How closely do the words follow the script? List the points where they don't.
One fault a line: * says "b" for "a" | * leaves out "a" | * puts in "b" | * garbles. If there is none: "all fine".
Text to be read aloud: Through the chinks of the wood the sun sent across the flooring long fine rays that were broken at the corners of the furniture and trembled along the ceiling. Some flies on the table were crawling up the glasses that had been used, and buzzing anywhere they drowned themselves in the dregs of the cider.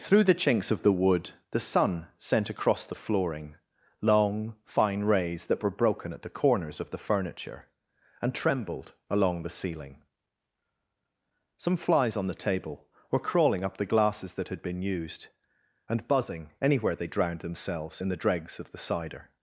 all fine